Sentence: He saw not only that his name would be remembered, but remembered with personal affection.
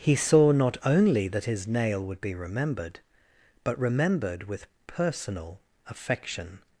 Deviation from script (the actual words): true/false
true